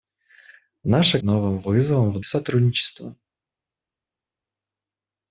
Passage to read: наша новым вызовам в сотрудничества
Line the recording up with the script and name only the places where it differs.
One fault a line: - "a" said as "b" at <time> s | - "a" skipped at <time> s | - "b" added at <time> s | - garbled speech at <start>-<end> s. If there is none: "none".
none